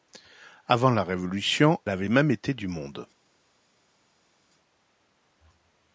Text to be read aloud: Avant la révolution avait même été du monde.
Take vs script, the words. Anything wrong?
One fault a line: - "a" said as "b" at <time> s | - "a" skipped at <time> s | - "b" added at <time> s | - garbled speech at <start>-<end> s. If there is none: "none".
none